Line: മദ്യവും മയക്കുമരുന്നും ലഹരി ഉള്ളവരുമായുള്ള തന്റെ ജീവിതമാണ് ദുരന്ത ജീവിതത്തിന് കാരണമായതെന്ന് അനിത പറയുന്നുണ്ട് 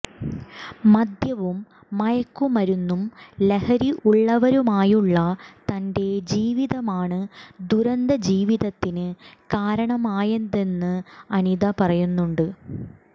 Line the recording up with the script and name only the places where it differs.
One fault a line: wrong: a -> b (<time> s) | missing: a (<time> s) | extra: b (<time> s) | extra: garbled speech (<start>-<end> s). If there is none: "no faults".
no faults